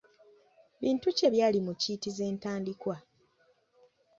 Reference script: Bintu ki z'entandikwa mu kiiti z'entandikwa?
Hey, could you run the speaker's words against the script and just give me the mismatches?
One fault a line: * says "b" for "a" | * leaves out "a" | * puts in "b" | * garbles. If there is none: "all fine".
* says "ebyali" for "z'entandikwa"